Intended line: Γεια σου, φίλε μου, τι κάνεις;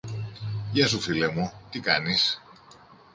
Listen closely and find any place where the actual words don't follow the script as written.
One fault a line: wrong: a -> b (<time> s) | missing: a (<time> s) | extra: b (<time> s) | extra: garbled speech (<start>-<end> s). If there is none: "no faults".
no faults